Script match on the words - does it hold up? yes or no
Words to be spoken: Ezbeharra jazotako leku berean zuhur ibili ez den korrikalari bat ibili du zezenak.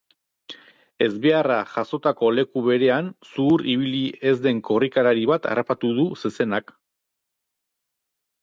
no